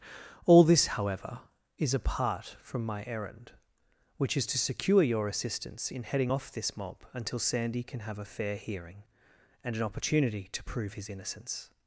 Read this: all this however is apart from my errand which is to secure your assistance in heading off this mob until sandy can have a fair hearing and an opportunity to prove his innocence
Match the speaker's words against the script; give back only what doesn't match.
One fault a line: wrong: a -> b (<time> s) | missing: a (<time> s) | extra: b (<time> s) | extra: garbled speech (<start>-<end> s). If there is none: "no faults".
no faults